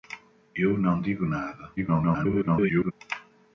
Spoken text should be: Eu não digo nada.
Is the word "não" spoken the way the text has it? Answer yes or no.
yes